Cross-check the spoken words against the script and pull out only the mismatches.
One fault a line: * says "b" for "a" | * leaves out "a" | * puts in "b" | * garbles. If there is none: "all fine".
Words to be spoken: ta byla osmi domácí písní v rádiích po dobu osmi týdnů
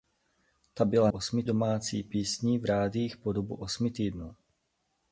all fine